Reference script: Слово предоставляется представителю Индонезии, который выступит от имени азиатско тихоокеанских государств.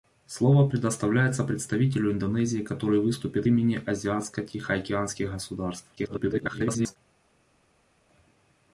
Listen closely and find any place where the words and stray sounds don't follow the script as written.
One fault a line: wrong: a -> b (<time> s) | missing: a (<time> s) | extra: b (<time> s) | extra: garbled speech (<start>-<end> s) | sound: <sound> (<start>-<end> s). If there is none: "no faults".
missing: от (3.5 s)
extra: garbled speech (6.0-7.0 s)